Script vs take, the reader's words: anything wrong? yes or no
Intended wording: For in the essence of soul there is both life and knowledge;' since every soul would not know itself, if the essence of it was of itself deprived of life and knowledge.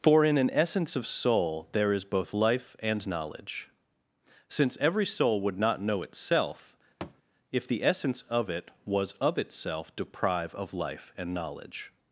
yes